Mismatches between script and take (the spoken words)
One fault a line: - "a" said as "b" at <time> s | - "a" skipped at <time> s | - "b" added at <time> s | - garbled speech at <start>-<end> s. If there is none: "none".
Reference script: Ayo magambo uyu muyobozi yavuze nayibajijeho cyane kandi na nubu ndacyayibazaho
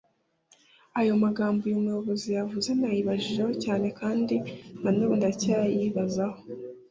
none